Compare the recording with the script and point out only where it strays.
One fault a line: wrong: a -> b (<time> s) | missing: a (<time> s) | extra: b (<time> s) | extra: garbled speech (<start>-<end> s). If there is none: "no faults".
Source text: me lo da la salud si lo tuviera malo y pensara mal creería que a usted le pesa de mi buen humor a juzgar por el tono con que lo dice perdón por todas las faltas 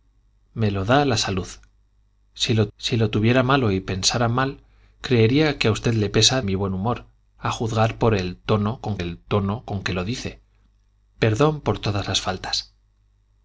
extra: si lo (2.8 s)
missing: de (6.4 s)
extra: el tono con (9.0 s)